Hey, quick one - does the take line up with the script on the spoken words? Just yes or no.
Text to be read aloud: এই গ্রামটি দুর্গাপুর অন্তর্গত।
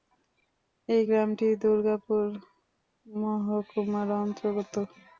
no